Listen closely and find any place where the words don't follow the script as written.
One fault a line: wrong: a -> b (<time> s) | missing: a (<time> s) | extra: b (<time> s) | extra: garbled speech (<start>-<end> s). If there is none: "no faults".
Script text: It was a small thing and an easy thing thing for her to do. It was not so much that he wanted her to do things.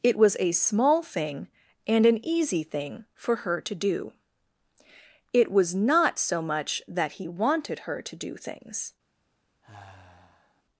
missing: thing (3.0 s)